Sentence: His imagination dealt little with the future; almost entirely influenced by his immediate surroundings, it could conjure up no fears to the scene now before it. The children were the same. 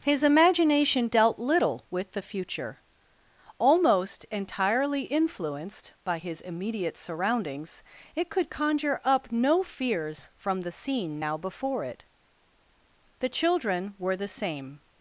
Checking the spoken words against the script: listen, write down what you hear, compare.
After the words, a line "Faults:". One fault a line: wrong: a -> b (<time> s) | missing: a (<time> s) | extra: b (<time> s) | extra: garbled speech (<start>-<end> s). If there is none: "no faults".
His imagination dealt little with the future; almost entirely influenced by his immediate surroundings, it could conjure up no fears from the scene now before it. The children were the same.
Faults:
wrong: to -> from (10.4 s)